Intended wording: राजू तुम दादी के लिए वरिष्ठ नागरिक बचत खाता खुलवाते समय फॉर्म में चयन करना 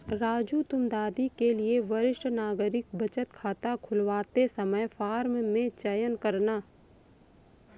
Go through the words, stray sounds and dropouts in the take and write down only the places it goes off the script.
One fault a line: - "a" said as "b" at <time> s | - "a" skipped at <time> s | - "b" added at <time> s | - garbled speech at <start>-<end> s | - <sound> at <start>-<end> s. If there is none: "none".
none